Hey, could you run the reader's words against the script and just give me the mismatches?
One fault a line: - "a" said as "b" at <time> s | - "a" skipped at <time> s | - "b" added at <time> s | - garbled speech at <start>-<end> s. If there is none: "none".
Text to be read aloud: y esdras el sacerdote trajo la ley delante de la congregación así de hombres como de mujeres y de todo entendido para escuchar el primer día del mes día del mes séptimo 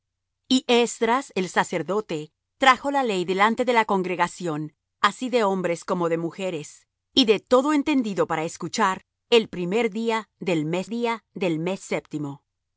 none